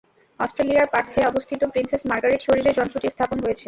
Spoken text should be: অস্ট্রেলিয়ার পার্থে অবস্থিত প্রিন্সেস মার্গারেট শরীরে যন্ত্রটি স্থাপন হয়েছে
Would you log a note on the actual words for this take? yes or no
no